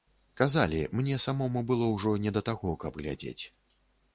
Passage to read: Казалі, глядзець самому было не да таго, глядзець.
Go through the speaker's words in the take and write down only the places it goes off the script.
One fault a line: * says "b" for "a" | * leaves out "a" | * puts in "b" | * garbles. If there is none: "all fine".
* says "мне" for "глядзець"
* puts in "ўжо"
* puts in "каб"